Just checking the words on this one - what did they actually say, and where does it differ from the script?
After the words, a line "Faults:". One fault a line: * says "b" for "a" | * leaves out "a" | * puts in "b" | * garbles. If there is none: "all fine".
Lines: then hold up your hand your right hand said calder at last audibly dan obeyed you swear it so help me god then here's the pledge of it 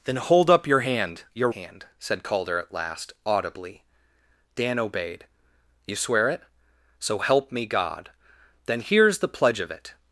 then hold up your hand your hand said calder at last audibly dan obeyed you swear it so help me god then here's the pledge of it
Faults:
* leaves out "right"